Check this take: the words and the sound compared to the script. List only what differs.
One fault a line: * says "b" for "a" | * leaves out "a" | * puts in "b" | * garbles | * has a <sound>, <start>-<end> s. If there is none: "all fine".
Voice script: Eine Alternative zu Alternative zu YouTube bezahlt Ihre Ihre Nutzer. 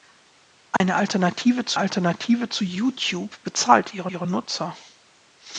* has a dropout, 0.8-0.8 s